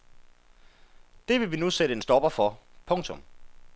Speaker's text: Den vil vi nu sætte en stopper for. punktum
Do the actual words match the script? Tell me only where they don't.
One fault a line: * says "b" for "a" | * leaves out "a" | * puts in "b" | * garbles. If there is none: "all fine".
* says "Det" for "Den"